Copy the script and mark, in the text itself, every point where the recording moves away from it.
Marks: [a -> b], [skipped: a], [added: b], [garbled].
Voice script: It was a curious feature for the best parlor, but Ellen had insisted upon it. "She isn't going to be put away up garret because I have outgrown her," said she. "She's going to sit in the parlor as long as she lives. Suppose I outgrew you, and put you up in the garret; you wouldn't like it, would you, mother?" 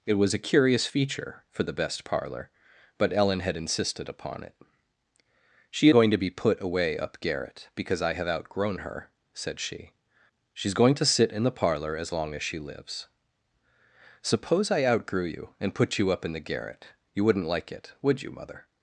It was a curious feature for the best parlor, but Ellen had insisted upon it. "She [skipped: isn't] going to be put away up garret because I have outgrown her," said she. "She's going to sit in the parlor as long as she lives. Suppose I outgrew you, and put you up in the garret; you wouldn't like it, would you, mother?"